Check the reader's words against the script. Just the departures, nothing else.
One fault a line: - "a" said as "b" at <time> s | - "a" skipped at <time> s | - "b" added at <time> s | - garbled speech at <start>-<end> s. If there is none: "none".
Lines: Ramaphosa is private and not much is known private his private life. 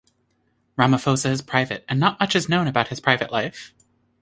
- "private" said as "about" at 2.6 s